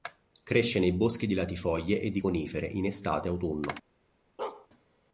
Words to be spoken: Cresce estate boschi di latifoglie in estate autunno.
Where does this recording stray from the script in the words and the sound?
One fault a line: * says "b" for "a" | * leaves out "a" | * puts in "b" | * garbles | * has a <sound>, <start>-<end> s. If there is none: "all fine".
* says "nei" for "estate"
* puts in "e di conifere"
* has a bark, 4.4-4.7 s